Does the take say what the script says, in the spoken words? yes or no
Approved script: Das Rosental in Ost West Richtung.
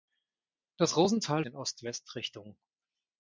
yes